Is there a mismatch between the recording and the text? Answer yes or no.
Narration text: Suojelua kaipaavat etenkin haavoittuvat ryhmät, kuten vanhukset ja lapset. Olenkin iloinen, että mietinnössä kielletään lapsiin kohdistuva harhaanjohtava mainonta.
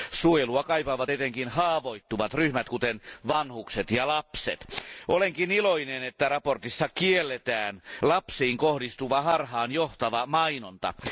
no